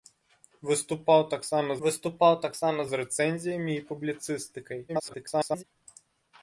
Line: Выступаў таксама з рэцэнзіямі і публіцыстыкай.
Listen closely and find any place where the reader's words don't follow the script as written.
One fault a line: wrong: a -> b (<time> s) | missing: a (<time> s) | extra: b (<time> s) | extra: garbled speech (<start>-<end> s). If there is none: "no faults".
extra: выступаў таксама (1.8 s)
extra: garbled speech (4.9-5.6 s)